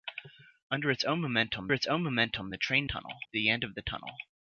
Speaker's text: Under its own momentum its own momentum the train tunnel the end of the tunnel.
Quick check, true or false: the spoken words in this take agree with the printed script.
true